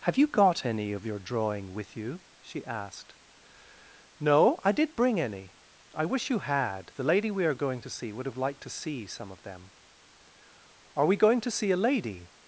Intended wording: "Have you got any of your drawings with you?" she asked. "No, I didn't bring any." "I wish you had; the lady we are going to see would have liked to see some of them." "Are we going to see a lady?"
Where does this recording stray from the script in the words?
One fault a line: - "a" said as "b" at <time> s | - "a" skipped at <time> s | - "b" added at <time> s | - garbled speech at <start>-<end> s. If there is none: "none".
- "drawings" said as "drawing" at 1.2 s
- "didn't" said as "did" at 4.7 s